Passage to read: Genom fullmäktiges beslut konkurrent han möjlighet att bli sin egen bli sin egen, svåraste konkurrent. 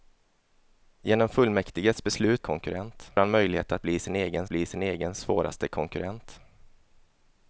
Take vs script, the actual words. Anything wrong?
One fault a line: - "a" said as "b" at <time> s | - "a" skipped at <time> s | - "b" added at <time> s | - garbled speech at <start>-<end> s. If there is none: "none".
none